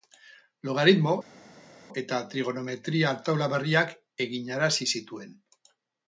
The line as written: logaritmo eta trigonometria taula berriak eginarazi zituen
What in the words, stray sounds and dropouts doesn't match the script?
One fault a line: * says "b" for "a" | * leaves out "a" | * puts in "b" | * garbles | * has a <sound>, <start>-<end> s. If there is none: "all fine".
all fine